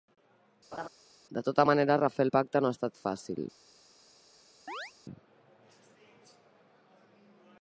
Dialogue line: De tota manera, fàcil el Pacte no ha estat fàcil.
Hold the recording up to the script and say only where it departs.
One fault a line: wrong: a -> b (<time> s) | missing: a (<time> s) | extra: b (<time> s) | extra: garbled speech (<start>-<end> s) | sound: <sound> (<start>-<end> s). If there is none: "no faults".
sound: laugh (0.7-0.9 s)
wrong: fàcil -> refer (2.0 s)
sound: chirp (4.7-4.9 s)